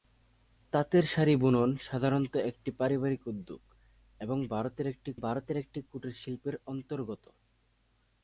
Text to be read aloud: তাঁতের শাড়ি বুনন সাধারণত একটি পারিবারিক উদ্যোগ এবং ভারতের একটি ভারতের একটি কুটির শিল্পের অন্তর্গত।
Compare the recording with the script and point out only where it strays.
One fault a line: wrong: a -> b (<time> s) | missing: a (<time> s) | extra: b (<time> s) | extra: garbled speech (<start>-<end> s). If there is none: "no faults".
no faults